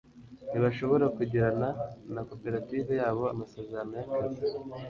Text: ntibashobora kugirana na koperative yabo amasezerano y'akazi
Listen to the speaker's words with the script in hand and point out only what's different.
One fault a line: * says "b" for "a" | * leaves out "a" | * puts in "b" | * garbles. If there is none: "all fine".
all fine